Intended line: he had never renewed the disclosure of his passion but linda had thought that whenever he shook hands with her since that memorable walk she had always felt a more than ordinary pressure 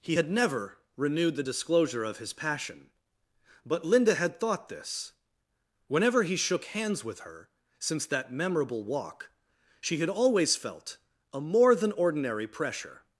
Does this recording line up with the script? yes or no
no